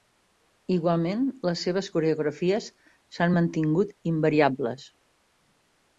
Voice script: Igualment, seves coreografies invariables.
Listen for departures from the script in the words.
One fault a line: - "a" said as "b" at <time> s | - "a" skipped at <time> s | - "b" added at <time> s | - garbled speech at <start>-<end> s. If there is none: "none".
- "les" added at 1.5 s
- "s'han mantingut" added at 3.2 s